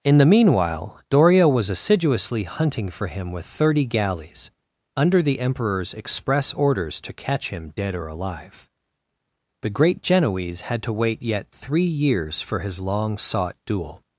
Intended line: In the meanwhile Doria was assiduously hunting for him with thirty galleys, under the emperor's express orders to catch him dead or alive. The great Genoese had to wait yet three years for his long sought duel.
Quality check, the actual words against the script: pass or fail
pass